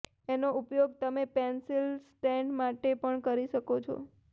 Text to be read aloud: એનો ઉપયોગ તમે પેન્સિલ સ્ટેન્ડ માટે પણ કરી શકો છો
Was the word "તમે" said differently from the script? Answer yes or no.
no